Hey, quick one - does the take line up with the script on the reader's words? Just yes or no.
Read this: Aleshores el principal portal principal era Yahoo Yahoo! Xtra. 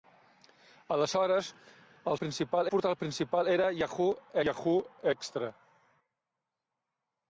yes